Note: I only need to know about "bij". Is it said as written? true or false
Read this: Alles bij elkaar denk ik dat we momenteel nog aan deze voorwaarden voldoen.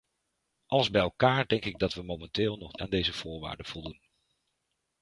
true